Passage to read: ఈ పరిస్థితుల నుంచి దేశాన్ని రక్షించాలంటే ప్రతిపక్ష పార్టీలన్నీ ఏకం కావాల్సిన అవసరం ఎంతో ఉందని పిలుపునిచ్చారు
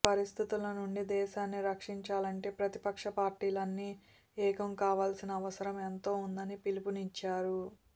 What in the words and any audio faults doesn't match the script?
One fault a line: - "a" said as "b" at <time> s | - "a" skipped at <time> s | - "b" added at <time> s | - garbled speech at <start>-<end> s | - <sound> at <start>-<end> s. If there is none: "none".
none